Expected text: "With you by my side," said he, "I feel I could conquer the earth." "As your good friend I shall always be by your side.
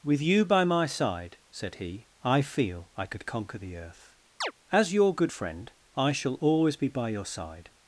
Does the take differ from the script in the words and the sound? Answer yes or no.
yes